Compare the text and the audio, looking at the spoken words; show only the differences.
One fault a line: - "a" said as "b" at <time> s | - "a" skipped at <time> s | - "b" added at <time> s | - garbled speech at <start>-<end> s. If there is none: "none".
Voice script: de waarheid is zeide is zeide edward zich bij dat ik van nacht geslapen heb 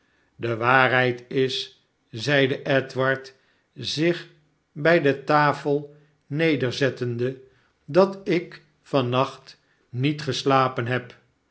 - "is zeide" skipped at 2.6 s
- "de tafel nederzettende" added at 5.0 s
- "niet" added at 9.9 s